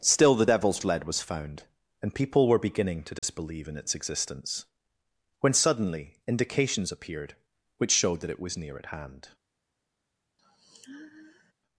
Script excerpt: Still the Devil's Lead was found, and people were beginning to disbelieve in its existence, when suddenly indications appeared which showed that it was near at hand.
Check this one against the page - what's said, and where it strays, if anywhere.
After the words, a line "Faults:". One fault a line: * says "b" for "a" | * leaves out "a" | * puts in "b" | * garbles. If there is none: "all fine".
Still the Devil's Lead was found, and people were beginning to disbelieve in its existence, when suddenly indications appeared which showed that it was near at hand.
Faults:
all fine